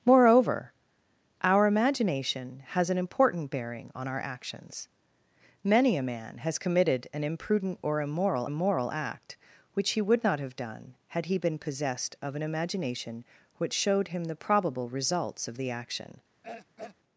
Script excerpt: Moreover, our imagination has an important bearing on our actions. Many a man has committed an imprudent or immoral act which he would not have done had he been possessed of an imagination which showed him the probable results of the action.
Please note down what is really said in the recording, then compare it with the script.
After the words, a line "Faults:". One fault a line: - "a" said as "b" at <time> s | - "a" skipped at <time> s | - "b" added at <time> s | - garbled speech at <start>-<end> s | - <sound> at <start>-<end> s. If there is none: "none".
Moreover, our imagination has an important bearing on our actions. Many a man has committed an imprudent or immoral immoral act which he would not have done had he been possessed of an imagination which showed him the probable results of the action.
Faults:
- "immoral" added at 8.4 s
- throat clearing at 16.4-17.0 s